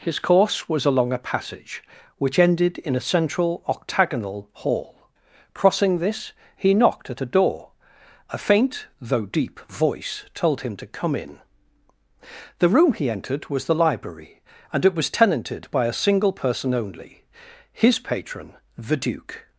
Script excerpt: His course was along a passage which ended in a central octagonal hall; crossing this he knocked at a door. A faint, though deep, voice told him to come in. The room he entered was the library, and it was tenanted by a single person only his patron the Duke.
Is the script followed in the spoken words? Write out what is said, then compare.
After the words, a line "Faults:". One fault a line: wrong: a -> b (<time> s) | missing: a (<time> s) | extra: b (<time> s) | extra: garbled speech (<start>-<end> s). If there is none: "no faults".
His course was along a passage which ended in a central octagonal hall; crossing this he knocked at a door. A faint, though deep, voice told him to come in. The room he entered was the library, and it was tenanted by a single person only his patron the Duke.
Faults:
no faults